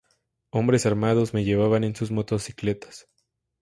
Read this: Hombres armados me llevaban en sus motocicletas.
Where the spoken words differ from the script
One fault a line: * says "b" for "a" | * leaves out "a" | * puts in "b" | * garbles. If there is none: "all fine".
all fine